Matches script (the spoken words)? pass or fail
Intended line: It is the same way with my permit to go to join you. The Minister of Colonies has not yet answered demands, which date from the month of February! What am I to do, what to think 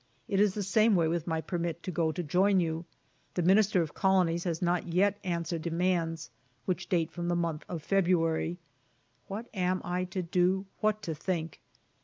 pass